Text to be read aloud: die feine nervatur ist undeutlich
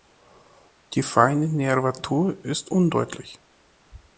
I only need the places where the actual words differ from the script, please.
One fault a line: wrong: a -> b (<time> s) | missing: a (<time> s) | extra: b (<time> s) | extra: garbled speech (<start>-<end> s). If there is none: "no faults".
no faults